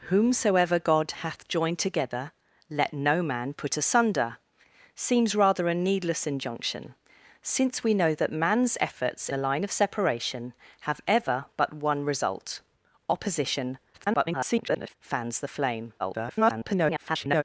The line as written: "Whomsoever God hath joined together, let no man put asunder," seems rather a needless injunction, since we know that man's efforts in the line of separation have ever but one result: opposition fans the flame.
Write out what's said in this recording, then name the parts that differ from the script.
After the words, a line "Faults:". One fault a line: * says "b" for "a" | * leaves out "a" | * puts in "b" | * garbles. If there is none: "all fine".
"Whomsoever God hath joined together, let no man put asunder," seems rather a needless injunction, since we know that man's efforts the line of separation have ever but one result: opposition [garbled] fans the flame. [garbled]
Faults:
* leaves out "in"
* garbles
* garbles